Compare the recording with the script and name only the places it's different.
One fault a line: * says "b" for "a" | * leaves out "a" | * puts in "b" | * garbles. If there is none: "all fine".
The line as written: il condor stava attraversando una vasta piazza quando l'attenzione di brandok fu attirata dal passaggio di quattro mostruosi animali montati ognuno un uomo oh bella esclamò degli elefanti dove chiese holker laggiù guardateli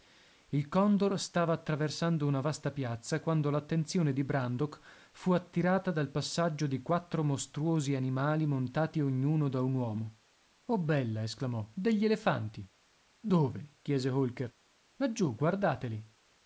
* puts in "da"